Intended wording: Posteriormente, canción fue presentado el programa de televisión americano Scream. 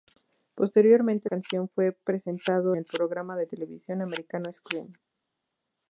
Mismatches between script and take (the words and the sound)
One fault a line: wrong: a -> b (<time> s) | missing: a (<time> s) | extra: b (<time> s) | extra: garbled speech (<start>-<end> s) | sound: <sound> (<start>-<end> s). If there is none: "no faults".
no faults